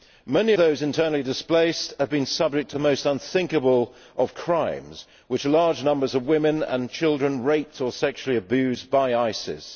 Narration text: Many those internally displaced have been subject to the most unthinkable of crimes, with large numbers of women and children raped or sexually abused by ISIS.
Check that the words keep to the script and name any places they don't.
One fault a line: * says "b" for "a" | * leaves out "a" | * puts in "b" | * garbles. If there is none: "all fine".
all fine